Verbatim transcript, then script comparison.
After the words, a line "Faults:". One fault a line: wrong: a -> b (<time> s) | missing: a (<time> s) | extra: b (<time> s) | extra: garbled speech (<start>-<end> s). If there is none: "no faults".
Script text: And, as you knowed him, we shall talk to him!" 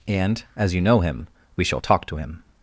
And, as you know him, we shall talk to him!"
Faults:
wrong: knowed -> know (0.8 s)